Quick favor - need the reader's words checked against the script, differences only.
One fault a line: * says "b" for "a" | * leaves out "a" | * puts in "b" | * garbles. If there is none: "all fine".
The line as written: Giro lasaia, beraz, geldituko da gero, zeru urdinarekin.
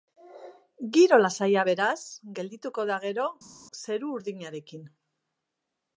all fine